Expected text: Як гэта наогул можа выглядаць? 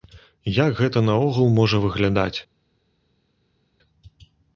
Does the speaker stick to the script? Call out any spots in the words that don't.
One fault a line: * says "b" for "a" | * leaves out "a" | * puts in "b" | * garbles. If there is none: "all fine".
all fine